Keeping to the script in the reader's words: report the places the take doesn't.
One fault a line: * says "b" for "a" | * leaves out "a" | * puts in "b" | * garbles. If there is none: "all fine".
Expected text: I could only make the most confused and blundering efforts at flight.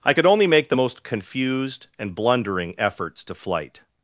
* says "to" for "at"